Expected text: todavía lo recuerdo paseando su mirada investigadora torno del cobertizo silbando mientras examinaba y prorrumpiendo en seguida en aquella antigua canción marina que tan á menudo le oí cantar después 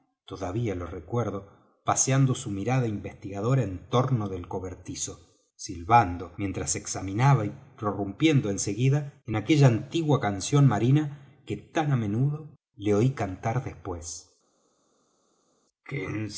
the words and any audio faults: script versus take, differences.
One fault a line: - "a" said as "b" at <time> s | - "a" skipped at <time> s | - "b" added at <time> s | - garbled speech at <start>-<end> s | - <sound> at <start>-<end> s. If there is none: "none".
- "en" added at 3.6 s